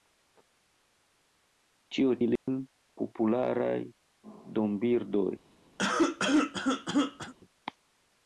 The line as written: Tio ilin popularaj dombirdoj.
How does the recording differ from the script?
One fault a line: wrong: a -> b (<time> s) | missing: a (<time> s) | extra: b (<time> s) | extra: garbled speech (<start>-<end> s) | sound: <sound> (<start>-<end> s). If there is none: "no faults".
sound: dropout (2.4-2.5 s)
sound: cough (5.8-7.3 s)